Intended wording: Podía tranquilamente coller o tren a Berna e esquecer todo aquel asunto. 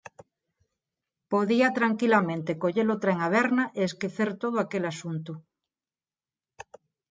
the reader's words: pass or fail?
pass